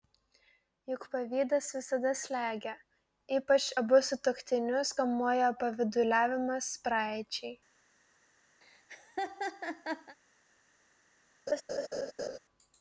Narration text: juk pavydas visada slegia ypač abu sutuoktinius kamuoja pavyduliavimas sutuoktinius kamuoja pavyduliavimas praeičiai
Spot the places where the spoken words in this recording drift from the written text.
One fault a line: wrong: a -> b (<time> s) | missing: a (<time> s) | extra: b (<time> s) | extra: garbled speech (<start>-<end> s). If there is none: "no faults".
missing: sutuoktinius kamuoja pavyduliavimas (6.7 s)